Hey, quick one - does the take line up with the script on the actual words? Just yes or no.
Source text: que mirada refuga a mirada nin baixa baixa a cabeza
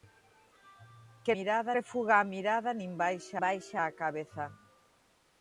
yes